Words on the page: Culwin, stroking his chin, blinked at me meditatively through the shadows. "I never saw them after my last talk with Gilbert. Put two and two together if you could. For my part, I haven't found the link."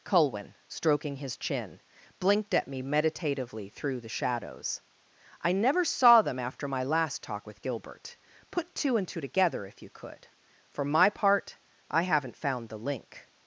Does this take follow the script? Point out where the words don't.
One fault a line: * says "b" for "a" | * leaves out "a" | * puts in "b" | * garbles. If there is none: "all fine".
all fine